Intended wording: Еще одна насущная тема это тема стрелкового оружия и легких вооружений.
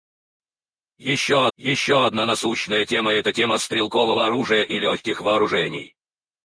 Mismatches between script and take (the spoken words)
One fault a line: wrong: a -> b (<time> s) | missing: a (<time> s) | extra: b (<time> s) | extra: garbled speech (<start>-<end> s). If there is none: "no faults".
extra: еще (1.6 s)